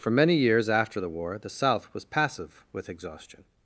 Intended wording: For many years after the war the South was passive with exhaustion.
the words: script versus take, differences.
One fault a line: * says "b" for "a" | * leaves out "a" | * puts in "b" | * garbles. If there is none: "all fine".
all fine